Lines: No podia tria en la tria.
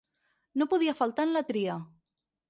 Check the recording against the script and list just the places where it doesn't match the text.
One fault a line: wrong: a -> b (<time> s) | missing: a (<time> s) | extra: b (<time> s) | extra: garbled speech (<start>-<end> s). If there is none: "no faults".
wrong: tria -> faltar (1.0 s)